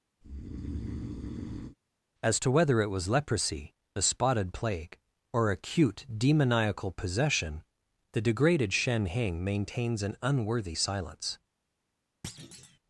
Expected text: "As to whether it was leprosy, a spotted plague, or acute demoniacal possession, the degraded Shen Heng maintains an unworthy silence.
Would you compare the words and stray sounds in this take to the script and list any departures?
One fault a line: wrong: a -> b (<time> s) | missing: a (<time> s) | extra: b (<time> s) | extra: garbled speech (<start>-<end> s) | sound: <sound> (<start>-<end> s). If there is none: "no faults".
sound: breath (0.2-1.8 s)
sound: thud (12.2-12.8 s)